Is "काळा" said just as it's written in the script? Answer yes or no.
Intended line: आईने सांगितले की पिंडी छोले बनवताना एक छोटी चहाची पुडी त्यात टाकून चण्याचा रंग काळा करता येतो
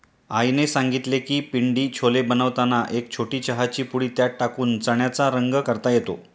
no